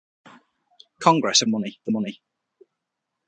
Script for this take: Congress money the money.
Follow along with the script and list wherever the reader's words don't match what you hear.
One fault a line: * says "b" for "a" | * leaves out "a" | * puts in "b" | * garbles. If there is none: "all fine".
all fine